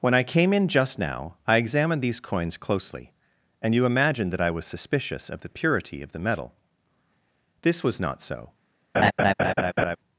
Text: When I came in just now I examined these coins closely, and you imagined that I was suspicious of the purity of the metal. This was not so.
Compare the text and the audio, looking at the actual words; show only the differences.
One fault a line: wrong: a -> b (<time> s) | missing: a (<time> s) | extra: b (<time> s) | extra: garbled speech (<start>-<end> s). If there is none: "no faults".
no faults